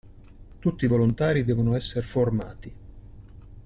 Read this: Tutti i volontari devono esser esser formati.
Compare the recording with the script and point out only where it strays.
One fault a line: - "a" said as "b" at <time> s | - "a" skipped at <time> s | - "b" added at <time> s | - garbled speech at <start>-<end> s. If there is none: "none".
- "esser" skipped at 2.0 s